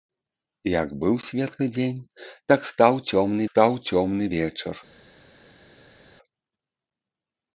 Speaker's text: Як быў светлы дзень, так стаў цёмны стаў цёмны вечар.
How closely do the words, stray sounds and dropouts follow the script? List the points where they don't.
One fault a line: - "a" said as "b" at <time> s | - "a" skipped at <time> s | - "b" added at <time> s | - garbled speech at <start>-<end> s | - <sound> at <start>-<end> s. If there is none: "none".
none